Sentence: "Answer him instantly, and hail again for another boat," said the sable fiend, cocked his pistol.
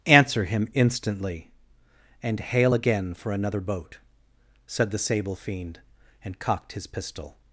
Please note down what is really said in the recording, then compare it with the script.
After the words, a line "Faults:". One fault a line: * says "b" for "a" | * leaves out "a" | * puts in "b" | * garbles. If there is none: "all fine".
"Answer him instantly, and hail again for another boat," said the sable fiend, and cocked his pistol.
Faults:
* puts in "and"